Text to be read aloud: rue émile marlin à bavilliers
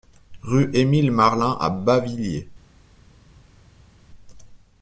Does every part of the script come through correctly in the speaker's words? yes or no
yes